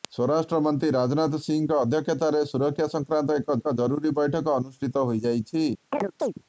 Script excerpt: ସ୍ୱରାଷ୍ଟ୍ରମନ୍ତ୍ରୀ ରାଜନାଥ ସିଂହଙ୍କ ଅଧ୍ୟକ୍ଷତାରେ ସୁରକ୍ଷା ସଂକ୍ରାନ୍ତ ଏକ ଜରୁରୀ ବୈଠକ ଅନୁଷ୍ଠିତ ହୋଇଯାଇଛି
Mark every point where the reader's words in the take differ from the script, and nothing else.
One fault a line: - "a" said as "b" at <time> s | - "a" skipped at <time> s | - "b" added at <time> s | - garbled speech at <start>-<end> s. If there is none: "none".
- "ଏକ" added at 3.6 s